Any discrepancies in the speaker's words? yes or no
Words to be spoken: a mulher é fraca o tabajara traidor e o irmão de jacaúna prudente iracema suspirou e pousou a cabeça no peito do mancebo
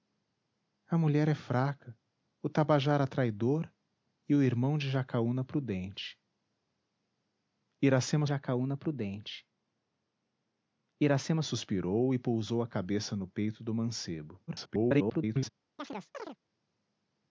yes